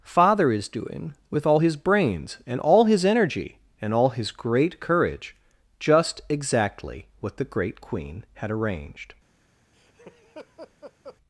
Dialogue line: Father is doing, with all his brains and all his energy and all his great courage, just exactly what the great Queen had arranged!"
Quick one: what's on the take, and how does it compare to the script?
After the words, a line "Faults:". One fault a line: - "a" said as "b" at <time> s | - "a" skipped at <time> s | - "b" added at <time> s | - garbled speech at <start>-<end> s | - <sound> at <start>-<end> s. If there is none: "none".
Father is doing, with all his brains and all his energy and all his great courage, just exactly what the great Queen had arranged!"
Faults:
- laugh at 9.7-11.2 s